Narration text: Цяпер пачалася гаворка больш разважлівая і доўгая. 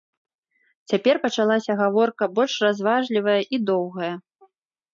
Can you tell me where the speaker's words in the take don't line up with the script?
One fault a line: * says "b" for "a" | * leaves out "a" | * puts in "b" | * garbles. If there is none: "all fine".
all fine